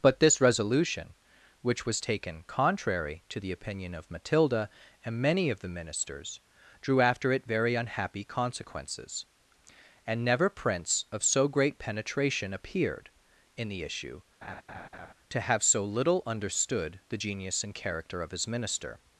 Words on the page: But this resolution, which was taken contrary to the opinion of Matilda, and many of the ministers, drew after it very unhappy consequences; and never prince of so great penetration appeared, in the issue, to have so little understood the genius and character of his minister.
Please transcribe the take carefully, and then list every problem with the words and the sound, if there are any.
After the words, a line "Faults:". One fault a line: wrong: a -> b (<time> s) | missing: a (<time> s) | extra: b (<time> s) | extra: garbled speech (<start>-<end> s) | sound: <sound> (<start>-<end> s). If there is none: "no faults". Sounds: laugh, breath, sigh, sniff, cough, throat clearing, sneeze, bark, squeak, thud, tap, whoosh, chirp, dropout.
But this resolution, which was taken contrary to the opinion of Matilda, and many of the ministers, drew after it very unhappy consequences; and never prince of so great penetration appeared, in the issue, to have so little understood the genius and character of his minister.
Faults:
sound: laugh (14.4-15.1 s)